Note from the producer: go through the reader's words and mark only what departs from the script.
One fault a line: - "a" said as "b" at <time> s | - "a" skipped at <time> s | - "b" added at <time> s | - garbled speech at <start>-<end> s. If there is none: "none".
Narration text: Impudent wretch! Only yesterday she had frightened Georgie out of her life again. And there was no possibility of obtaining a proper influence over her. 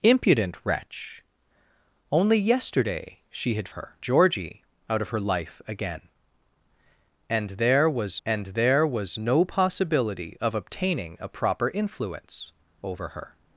- "frightened" said as "her" at 3.7 s
- "and there was" added at 8.3 s